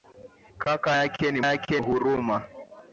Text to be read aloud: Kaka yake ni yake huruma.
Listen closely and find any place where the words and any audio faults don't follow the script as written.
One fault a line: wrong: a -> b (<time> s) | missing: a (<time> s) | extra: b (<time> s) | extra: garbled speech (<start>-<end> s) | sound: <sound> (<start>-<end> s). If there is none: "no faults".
no faults